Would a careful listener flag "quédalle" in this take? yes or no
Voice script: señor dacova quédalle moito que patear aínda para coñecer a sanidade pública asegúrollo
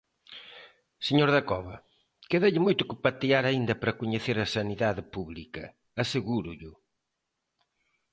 no